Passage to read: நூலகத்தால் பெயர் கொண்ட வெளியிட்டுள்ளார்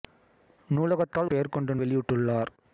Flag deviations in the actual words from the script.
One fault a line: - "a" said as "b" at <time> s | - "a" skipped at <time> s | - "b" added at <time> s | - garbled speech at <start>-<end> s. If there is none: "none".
none